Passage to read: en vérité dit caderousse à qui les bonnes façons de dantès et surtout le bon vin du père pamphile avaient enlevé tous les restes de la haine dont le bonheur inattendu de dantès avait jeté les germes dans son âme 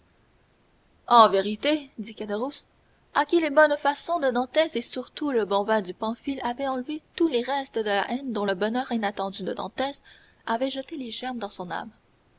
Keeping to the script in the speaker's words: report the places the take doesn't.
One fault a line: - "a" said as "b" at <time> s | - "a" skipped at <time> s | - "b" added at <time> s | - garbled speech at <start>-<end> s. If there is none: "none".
- "père" skipped at 5.9 s